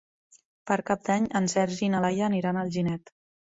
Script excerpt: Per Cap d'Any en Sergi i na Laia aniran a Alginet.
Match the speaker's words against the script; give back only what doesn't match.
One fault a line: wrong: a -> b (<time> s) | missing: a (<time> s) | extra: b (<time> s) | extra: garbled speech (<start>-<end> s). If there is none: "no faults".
no faults